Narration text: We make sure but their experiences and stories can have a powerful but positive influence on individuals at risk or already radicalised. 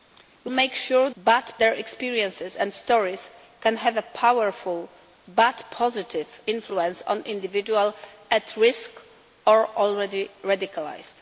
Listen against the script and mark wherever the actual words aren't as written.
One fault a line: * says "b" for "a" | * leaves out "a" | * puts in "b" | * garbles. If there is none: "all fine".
all fine